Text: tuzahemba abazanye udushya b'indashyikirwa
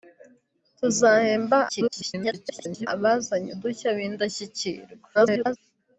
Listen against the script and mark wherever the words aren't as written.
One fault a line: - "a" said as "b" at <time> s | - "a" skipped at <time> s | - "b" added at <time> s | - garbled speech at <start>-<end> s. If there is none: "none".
- garbled speech at 1.7-2.9 s
- garbled speech at 5.1-5.6 s